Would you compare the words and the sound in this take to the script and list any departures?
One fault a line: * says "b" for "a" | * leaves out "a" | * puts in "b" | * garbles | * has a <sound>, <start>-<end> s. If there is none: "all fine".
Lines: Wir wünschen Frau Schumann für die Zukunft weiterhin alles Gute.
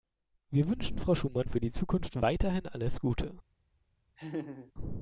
* has a laugh, 4.2-4.7 s